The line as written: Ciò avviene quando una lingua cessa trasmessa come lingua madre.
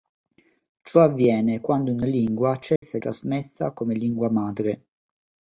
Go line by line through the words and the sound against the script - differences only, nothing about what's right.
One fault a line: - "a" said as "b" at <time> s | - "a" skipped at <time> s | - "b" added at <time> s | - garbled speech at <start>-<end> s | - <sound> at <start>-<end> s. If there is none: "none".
- dropout at 2.8-2.8 s